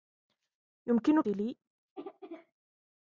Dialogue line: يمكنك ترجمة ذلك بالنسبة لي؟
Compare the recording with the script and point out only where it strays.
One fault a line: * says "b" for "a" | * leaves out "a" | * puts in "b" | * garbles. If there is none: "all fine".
* leaves out "ترجمة ذلك بالنسبة"